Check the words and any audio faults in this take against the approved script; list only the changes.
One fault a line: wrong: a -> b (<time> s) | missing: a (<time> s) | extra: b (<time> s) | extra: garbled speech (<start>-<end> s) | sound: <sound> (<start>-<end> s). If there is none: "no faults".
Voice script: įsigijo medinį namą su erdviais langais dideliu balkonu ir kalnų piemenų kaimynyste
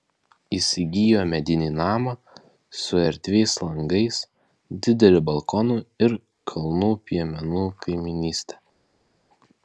no faults